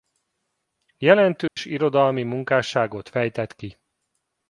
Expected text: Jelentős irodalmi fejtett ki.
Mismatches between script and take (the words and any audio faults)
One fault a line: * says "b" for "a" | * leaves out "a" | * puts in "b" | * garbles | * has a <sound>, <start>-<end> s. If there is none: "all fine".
* has a dropout, 1.5-1.6 s
* puts in "munkásságot"